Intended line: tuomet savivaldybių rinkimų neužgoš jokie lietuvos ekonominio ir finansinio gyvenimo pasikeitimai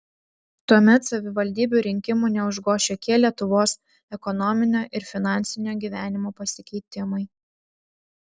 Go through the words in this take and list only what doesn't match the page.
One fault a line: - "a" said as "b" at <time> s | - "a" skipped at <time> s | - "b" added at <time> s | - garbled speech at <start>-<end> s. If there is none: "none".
none